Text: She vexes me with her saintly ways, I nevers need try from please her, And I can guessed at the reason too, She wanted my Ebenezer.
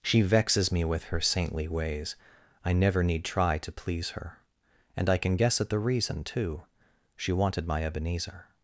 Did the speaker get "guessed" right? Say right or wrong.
wrong